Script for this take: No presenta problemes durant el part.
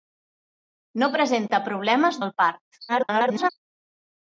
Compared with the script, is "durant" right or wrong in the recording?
wrong